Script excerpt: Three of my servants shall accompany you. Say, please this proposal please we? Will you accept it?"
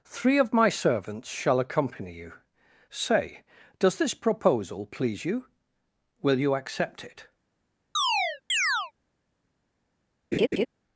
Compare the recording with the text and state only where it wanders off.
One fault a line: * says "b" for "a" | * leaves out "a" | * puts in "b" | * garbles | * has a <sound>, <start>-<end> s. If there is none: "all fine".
* says "does" for "please"
* says "you" for "we"
* has a chirp, 8.0-8.9 s
* has a laugh, 10.3-10.7 s